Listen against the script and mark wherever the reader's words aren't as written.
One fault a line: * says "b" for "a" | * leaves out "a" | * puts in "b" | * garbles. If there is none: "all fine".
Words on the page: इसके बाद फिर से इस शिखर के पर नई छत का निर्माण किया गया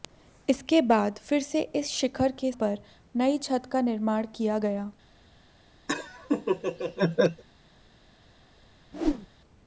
all fine